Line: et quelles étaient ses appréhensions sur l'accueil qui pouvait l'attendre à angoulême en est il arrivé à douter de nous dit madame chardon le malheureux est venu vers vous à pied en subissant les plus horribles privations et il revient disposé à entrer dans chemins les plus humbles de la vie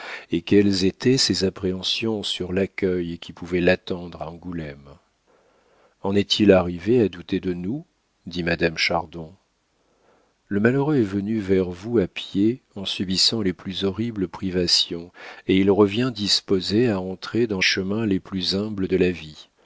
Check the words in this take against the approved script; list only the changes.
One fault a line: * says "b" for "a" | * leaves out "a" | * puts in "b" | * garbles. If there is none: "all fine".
all fine